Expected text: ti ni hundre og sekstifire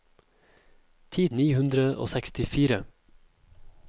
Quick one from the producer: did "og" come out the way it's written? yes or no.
yes